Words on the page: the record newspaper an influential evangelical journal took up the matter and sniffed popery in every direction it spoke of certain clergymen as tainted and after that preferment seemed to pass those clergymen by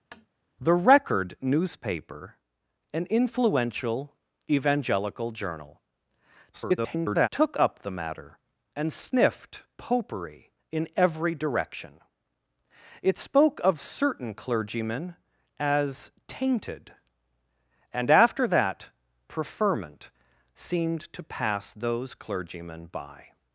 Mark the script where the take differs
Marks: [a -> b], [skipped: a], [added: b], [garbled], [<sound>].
[tap] the record newspaper an influential evangelical journal [garbled] took up the matter and sniffed popery in every direction it spoke of certain clergymen as tainted and after that preferment seemed to pass those clergymen by